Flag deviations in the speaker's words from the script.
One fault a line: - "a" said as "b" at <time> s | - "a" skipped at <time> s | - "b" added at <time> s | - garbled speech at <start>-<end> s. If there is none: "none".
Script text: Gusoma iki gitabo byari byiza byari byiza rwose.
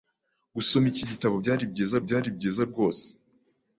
none